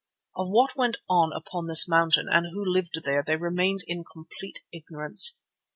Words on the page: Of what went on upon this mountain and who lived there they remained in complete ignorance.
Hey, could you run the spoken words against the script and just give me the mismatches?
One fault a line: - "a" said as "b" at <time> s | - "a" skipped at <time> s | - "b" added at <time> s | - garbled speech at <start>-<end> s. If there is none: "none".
none